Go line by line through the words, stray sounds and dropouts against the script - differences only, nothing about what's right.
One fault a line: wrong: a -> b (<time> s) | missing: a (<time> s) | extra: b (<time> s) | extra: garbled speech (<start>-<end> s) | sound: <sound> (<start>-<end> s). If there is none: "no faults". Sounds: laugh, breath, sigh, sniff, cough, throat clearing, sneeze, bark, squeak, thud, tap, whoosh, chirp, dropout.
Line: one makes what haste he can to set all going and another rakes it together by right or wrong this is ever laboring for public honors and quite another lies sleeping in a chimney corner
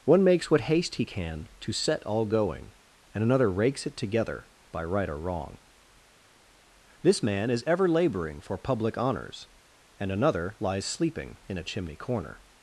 extra: man (7.2 s)
missing: quite (10.1 s)